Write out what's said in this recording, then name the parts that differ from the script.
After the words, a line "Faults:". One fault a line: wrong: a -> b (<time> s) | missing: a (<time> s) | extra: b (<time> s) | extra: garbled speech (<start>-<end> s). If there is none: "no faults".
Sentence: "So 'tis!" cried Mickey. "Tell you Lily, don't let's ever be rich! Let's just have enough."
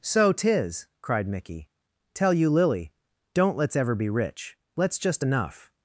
"So 'tis!" cried Mickey. "Tell you Lily, don't let's ever be rich! Let's just enough."
Faults:
missing: have (5.2 s)